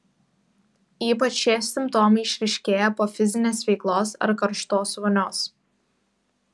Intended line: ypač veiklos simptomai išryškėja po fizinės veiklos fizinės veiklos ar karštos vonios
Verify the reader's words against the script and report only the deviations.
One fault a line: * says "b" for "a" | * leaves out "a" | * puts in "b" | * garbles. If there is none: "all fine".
* says "šie" for "veiklos"
* leaves out "fizinės veiklos"